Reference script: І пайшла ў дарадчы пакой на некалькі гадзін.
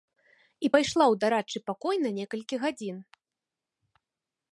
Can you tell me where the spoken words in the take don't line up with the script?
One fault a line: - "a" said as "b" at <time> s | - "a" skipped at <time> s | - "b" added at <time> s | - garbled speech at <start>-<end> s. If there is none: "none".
none